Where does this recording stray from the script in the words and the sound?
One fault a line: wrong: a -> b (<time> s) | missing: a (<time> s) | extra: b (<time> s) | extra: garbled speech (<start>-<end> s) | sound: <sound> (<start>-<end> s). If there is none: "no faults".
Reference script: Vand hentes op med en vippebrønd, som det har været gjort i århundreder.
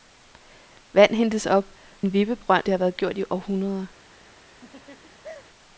missing: med (1.6 s)
missing: som (2.7 s)
sound: laugh (4.6-5.4 s)